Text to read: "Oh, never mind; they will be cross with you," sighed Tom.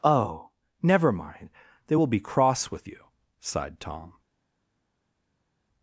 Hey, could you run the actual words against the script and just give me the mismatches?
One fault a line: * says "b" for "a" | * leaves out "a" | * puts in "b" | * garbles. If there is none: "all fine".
all fine